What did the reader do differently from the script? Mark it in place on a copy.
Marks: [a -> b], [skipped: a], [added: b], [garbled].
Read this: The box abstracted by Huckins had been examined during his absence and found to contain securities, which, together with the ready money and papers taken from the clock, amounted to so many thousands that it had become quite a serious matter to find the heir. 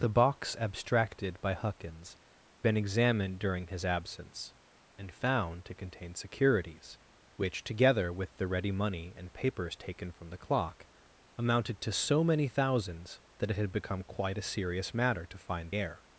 The box abstracted by Huckins [skipped: had] been examined during his absence and found to contain securities, which, together with the ready money and papers taken from the clock, amounted to so many thousands that it had become quite a serious matter to find [skipped: the] heir.